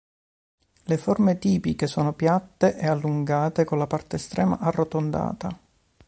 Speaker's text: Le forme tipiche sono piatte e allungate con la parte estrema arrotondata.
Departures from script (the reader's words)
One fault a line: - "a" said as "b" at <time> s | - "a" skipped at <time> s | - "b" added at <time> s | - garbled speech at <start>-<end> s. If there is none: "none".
none